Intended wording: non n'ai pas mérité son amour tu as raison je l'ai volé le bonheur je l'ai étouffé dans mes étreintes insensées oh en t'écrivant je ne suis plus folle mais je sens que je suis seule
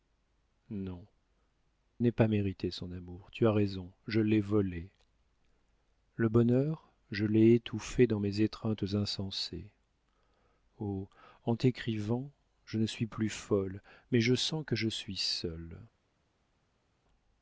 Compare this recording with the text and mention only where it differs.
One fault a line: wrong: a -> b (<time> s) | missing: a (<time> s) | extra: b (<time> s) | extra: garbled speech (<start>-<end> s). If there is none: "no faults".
no faults